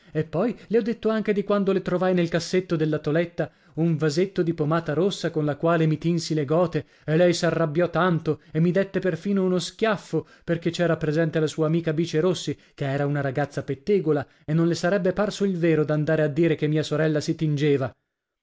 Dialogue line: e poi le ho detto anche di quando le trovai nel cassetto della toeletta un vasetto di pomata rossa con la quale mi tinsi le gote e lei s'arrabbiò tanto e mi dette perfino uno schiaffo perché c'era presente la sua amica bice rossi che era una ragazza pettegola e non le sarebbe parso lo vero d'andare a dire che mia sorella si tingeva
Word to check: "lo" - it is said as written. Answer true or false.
false